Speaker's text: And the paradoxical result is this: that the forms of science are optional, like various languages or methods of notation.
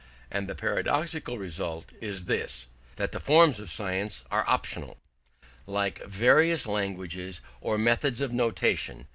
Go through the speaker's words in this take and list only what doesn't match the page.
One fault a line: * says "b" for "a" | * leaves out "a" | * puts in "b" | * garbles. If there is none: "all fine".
all fine